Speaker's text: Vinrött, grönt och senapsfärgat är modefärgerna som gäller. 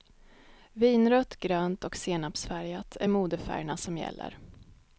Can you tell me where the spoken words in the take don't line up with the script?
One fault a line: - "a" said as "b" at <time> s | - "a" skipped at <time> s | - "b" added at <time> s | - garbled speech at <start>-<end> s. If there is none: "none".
none